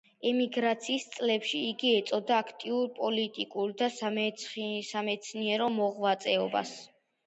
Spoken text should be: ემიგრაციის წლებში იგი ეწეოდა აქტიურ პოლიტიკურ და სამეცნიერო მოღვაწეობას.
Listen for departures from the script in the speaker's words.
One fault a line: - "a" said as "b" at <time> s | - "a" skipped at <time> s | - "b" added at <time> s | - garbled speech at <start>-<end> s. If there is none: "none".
none